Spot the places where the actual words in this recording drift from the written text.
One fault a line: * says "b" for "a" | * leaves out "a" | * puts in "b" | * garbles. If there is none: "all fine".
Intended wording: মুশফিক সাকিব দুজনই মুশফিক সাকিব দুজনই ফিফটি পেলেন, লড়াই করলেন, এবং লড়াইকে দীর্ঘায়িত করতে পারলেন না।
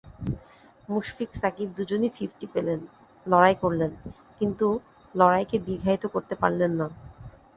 * leaves out "মুশফিক সাকিব দুজনই"
* says "কিন্তু" for "এবং"